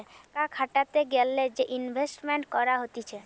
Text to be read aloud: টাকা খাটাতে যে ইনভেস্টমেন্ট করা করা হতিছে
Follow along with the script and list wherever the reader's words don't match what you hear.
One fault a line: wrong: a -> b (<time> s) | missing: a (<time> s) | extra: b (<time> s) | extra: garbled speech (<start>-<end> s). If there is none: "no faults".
extra: গ্যালে (1.1 s)
missing: করা (2.8 s)